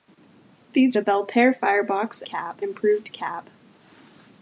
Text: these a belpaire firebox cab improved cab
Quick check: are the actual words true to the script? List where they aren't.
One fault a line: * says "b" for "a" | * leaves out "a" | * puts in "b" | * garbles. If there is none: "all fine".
all fine